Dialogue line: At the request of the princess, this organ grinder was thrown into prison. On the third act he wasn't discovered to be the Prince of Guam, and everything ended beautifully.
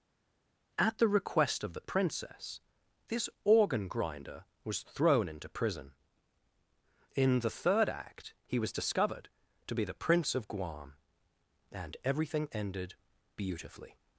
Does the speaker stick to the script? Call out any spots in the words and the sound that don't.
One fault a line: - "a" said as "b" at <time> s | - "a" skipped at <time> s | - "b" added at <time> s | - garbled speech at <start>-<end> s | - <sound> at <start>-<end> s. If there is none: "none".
- "On" said as "In" at 7.2 s
- "wasn't" said as "was" at 8.6 s